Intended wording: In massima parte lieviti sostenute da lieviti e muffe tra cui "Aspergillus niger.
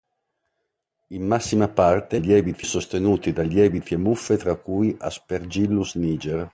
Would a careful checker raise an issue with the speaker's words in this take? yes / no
no